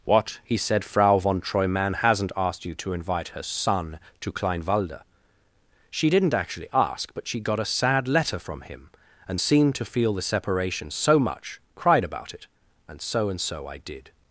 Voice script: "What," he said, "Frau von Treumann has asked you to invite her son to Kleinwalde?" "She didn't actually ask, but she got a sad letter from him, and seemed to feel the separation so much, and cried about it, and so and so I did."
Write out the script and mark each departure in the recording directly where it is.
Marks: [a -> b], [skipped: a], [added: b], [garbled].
"What," he said, "Frau von Treumann [has -> hasn't] asked you to invite her son to Kleinwalde?" "She didn't actually ask, but she got a sad letter from him, and seemed to feel the separation so much, [skipped: and] cried about it, and so and so I did."